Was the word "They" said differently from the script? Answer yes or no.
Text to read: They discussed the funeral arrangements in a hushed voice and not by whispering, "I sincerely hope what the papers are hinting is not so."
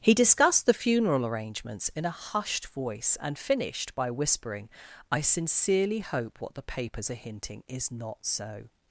yes